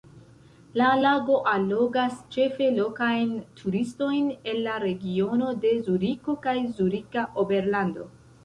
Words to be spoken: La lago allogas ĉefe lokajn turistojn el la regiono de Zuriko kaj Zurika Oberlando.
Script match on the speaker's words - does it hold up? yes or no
yes